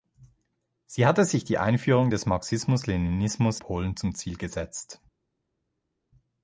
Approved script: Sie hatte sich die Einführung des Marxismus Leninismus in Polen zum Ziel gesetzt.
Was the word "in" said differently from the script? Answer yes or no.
yes